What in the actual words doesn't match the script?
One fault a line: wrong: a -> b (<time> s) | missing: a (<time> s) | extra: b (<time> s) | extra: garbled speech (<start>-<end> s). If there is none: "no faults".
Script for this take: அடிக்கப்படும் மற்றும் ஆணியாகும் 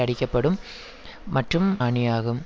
no faults